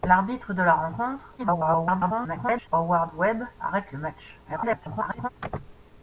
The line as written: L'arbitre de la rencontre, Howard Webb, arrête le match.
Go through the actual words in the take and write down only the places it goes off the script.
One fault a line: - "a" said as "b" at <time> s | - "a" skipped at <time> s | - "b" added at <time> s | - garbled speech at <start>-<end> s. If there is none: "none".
- garbled speech at 1.4-2.7 s
- garbled speech at 4.4-5.3 s